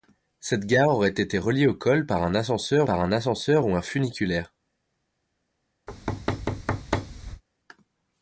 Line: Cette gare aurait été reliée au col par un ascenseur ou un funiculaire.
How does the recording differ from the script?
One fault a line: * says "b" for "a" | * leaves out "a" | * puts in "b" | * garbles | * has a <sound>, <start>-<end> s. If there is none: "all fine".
* puts in "par un ascenseur"
* has a thud, 5.9-7.4 s